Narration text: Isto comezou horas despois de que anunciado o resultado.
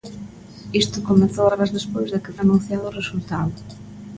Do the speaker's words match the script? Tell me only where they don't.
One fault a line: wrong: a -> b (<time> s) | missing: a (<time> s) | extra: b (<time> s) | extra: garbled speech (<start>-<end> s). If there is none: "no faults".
no faults